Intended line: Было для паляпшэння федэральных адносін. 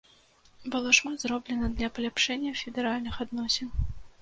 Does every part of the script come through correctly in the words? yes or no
no